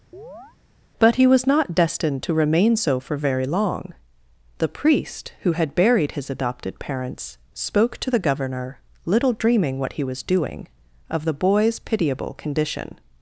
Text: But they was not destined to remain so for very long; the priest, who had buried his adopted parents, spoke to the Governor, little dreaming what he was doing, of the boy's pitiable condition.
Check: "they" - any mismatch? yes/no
yes